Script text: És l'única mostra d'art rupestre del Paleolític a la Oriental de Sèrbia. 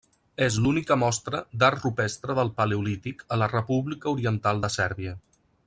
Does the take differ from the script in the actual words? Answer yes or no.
yes